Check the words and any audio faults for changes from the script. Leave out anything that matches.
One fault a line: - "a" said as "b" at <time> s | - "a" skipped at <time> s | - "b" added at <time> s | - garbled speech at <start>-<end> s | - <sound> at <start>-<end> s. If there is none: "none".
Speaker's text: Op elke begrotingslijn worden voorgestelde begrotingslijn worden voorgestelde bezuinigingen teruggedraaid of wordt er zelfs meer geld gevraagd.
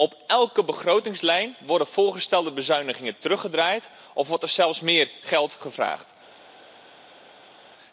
- "begrotingslijn worden voorgestelde" skipped at 2.5 s